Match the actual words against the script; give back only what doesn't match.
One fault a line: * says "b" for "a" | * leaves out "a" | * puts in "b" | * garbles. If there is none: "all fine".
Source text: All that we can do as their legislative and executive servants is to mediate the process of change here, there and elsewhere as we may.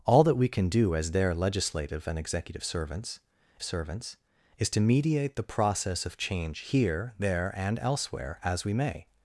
* puts in "servants"